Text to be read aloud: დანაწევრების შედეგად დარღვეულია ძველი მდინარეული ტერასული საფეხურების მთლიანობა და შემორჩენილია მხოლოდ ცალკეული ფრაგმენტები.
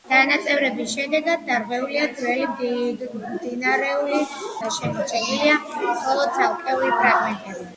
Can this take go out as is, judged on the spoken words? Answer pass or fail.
fail